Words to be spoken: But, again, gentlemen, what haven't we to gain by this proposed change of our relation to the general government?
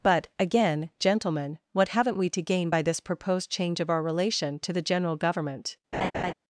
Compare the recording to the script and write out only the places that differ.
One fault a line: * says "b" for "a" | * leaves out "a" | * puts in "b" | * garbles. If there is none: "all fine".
all fine